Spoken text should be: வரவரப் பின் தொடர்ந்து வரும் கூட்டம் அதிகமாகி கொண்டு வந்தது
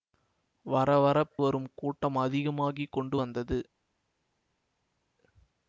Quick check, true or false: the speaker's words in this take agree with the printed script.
false